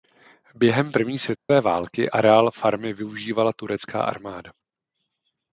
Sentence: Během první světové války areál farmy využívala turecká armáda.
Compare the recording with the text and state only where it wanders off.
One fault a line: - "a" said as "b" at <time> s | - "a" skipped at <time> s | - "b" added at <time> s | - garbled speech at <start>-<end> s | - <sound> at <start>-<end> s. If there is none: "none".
- dropout at 1.4-1.5 s